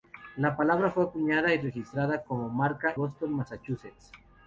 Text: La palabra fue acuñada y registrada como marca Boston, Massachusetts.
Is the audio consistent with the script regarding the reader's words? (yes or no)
yes